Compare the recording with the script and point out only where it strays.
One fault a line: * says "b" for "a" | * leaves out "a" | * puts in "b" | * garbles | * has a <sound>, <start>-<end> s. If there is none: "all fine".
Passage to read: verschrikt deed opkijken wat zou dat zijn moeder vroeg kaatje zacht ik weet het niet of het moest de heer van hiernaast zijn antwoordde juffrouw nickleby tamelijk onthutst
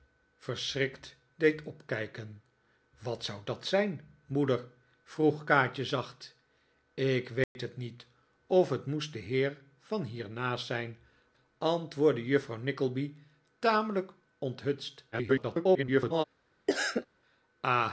* has a dropout, 7.4-7.6 s
* garbles
* has a cough, 16.7-17.1 s